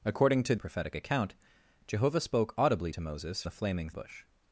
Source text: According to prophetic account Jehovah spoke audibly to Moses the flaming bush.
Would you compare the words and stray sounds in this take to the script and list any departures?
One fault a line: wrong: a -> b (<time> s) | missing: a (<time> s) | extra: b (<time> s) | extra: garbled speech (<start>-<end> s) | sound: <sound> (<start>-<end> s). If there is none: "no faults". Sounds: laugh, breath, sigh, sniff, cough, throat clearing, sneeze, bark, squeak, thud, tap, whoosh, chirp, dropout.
no faults